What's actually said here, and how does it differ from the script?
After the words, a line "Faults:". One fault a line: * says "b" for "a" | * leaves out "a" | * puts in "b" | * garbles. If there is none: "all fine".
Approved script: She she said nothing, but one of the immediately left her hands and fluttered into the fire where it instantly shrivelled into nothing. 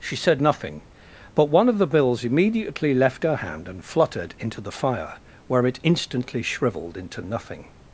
She said nothing, but one of the bills immediately left her hand and fluttered into the fire where it instantly shrivelled into nothing.
Faults:
* leaves out "she"
* puts in "bills"
* says "hand" for "hands"